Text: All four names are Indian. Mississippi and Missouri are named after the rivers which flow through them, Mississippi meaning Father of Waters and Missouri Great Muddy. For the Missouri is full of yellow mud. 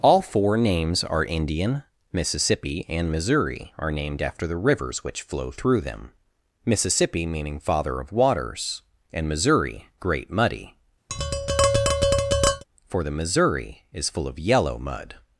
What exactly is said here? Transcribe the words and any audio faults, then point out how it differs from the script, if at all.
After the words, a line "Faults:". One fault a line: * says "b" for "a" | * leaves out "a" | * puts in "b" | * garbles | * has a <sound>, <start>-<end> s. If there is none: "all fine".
All four names are Indian. Mississippi and Missouri are named after the rivers which flow through them, Mississippi meaning Father of Waters and Missouri Great Muddy. For the Missouri is full of yellow mud.
Faults:
* has a tap, 11.1-12.6 s